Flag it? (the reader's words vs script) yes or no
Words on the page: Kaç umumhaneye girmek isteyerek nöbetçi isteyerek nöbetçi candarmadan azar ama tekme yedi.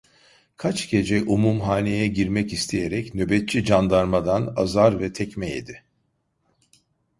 yes